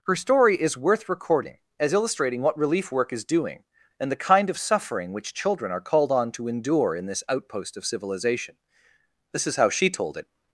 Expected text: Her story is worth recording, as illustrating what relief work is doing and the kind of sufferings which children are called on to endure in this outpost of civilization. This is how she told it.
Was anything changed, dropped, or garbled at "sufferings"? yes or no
yes